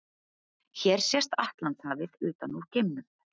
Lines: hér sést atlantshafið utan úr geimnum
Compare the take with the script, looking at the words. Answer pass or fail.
pass